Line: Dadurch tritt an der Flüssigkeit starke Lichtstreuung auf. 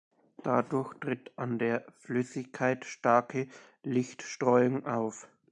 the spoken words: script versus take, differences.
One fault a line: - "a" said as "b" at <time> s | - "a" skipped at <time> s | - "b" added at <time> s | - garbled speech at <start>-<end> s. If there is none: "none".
none